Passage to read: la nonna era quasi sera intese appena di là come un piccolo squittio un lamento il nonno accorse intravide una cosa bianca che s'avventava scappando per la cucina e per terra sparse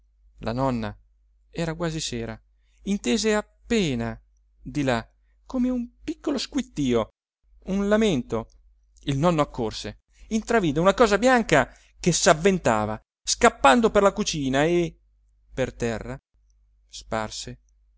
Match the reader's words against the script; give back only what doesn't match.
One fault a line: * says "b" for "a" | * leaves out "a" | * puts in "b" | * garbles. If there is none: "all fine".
all fine